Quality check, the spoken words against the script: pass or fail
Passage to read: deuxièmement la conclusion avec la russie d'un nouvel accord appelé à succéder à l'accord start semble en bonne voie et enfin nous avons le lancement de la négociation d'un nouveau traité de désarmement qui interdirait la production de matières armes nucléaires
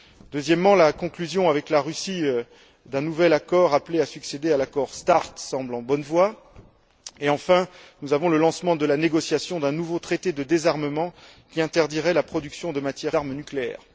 pass